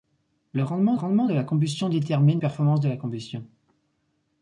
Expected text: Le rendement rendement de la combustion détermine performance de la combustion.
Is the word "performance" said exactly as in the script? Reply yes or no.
yes